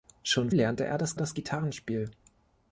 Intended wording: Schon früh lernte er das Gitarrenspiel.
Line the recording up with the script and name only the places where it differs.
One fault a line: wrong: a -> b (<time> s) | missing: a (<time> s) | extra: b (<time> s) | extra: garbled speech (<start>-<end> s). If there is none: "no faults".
missing: früh (0.5 s)
extra: das (1.2 s)